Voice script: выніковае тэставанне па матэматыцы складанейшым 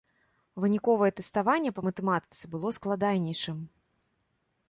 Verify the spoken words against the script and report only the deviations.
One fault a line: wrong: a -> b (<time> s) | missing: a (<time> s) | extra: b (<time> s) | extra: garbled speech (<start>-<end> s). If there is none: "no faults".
extra: было (2.6 s)